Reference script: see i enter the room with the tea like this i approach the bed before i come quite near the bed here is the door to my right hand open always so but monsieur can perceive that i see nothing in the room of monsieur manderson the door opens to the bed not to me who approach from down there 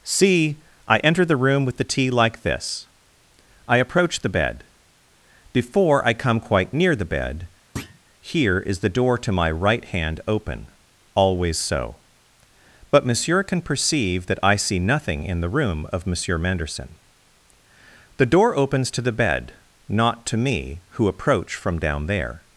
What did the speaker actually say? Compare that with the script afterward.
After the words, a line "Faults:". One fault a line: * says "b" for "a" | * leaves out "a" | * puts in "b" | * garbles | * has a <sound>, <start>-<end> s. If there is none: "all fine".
see i enter the room with the tea like this i approach the bed before i come quite near the bed here is the door to my right hand open always so but monsieur can perceive that i see nothing in the room of monsieur manderson the door opens to the bed not to me who approach from down there
Faults:
* has a thud, 7.8-8.0 s